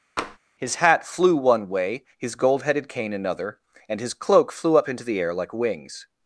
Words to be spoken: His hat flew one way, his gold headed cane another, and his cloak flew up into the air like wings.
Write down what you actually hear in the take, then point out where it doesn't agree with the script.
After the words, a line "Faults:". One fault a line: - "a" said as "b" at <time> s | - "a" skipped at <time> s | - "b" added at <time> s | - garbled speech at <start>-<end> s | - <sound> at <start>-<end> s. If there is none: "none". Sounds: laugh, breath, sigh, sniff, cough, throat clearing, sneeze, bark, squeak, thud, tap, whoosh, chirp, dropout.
His hat flew one way, his gold headed cane another, and his cloak flew up into the air like wings.
Faults:
- tap at 0.2-0.4 s